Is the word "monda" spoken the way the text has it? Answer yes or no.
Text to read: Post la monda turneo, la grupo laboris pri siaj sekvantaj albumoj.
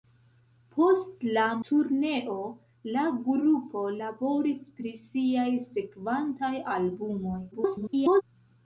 no